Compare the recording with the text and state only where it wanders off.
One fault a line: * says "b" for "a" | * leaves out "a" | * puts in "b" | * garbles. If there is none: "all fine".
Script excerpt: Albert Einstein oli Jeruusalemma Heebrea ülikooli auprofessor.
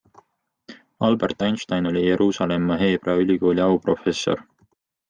all fine